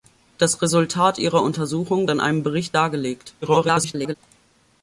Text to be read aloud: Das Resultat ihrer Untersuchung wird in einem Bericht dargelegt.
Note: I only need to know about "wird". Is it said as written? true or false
false